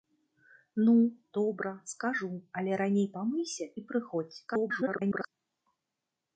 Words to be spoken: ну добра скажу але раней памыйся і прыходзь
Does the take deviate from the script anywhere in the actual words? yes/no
yes